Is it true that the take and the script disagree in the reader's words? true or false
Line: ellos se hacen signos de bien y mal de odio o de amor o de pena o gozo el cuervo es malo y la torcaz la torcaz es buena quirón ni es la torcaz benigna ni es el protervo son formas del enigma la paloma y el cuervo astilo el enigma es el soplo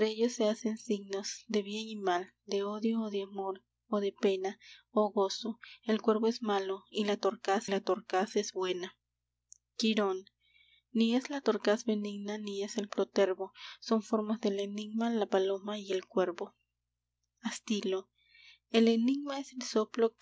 false